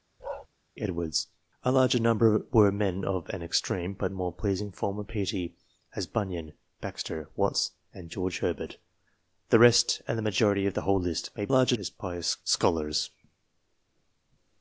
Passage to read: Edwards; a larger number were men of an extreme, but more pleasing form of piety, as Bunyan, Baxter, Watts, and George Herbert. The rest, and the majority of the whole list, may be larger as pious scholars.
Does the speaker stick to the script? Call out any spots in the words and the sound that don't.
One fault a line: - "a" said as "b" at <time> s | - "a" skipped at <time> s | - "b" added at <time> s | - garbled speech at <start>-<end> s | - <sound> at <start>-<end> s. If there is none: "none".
- bark at 0.2-0.5 s